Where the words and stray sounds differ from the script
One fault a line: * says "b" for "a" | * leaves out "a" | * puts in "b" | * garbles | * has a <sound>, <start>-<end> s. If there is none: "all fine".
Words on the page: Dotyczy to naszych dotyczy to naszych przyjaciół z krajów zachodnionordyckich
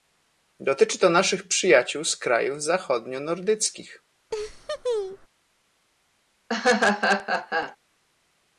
* leaves out "dotyczy to naszych"
* has a laugh, 4.3-5.3 s
* has a laugh, 6.5-7.8 s